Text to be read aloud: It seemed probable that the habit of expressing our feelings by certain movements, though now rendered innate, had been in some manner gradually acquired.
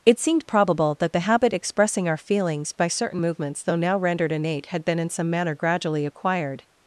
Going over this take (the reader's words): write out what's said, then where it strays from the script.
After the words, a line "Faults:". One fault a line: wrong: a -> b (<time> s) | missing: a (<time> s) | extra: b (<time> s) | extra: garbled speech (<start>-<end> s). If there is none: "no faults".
It seemed probable that the habit expressing our feelings by certain movements, though now rendered innate, had been in some manner gradually acquired.
Faults:
missing: of (1.5 s)